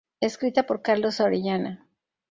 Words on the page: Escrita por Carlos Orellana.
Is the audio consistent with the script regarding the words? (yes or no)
yes